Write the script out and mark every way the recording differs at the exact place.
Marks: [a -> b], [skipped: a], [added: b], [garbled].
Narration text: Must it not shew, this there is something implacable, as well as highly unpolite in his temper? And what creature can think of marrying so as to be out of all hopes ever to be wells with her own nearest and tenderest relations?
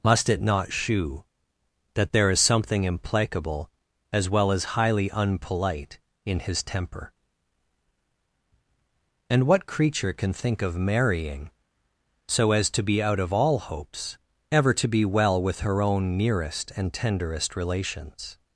Must it not shew, [this -> that] there is something implacable, as well as highly unpolite in his temper? And what creature can think of marrying so as to be out of all hopes ever to be [wells -> well] with her own nearest and tenderest relations?